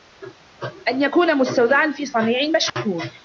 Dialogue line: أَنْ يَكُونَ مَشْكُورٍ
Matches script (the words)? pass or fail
fail